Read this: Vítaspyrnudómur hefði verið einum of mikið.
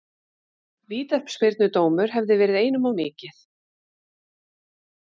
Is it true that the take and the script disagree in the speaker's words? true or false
false